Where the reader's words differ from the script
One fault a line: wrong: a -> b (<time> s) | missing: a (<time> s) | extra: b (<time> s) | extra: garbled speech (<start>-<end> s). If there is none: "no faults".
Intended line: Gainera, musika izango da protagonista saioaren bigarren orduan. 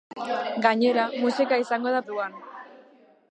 missing: protagonista saioaren bigarren (2.0 s)